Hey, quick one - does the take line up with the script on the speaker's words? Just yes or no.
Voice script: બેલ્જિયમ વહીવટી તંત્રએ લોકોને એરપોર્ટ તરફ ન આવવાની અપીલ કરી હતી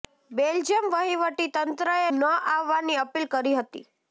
no